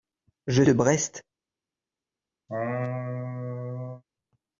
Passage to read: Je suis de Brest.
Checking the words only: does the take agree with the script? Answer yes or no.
no